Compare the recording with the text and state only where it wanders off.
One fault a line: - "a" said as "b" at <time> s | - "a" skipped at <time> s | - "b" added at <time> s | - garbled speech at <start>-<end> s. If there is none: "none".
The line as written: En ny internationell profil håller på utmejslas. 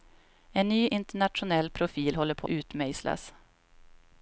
none